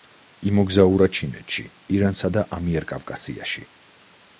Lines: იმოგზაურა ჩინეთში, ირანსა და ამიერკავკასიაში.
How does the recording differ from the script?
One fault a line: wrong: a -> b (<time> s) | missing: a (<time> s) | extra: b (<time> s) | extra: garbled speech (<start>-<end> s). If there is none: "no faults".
no faults